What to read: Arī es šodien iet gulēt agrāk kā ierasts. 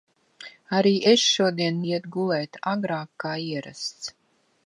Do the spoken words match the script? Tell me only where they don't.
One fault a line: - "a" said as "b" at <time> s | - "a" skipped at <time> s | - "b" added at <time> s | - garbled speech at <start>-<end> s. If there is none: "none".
none